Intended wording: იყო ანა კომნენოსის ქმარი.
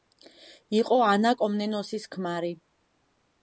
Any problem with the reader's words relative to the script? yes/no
no